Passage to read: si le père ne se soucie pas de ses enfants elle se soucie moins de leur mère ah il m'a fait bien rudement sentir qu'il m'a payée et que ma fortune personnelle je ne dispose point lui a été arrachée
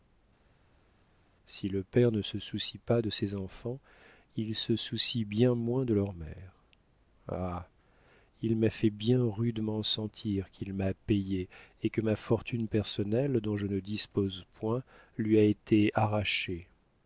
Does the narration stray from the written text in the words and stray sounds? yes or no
yes